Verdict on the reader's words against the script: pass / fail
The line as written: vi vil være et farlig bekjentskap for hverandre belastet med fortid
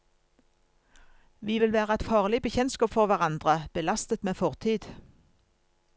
pass